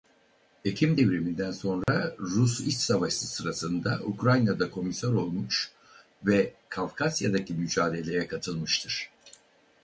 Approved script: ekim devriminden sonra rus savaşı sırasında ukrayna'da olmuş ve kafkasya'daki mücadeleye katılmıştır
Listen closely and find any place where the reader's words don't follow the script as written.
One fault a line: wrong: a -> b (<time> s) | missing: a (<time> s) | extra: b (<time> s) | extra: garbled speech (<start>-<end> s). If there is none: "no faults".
extra: i̇ç (2.6 s)
extra: komiser (4.7 s)